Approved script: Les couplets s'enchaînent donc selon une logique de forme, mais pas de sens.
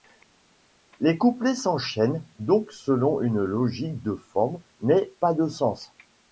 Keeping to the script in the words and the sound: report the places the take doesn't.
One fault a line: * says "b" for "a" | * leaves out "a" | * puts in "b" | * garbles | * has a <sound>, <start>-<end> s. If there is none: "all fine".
all fine